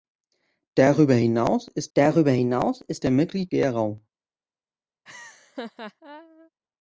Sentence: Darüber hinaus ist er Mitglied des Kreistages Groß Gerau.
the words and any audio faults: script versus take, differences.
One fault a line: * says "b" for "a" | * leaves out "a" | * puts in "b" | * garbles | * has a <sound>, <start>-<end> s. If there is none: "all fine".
* says "darüber hinaus ist er Mitglied" for "er Mitglied des Kreistages Groß"
* has a laugh, 5.1-6.5 s